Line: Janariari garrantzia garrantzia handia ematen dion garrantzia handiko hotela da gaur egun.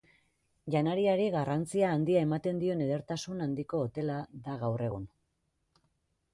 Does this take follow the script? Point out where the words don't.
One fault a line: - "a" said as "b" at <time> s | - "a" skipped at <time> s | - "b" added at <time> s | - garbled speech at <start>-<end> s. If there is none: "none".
- "garrantzia" skipped at 1.9 s
- "garrantzia" said as "edertasun" at 2.9 s